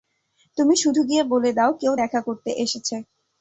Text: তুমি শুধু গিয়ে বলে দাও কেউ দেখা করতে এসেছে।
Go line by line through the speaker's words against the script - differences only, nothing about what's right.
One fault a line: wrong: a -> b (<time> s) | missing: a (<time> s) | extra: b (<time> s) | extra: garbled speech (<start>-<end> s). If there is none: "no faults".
no faults